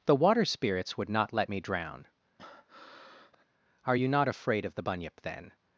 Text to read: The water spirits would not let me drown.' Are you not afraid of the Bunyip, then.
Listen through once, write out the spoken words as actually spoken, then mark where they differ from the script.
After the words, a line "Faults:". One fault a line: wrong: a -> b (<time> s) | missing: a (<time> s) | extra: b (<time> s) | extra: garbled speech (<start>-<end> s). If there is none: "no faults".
The water spirits would not let me drown.' Are you not afraid of the Bunyip, then.
Faults:
no faults